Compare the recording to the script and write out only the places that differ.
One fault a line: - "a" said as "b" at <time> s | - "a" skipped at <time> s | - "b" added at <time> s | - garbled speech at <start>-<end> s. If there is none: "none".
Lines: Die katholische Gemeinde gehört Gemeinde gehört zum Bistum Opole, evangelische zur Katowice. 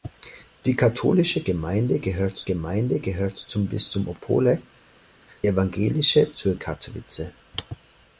none